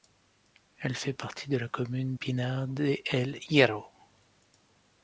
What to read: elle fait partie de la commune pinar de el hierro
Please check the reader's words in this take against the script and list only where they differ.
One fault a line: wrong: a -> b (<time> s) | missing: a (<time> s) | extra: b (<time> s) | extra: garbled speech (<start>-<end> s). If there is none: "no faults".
no faults